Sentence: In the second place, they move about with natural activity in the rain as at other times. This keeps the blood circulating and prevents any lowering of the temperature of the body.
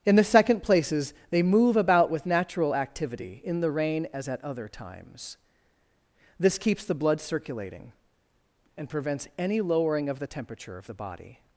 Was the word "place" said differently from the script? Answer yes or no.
yes